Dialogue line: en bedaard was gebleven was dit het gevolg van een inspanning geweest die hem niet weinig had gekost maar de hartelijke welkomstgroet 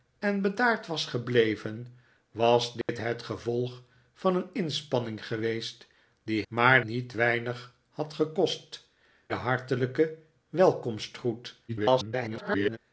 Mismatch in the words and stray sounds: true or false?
true